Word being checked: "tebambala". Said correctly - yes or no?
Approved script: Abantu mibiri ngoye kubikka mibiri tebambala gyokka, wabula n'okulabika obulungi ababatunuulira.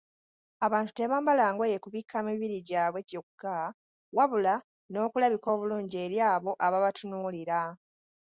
no